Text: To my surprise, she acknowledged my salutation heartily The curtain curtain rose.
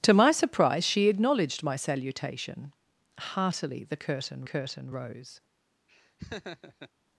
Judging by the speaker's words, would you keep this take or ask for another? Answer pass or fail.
pass